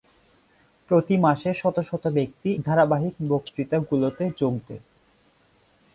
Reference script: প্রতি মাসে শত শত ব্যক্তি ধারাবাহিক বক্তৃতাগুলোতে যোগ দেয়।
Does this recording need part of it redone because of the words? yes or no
no